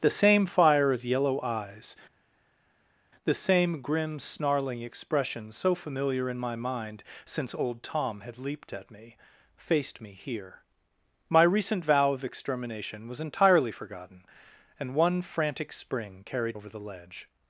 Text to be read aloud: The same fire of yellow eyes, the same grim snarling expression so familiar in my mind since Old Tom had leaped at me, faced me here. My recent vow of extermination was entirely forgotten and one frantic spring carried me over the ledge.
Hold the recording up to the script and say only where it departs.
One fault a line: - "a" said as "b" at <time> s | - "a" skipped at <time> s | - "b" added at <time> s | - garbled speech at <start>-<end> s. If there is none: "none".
- "me" skipped at 16.6 s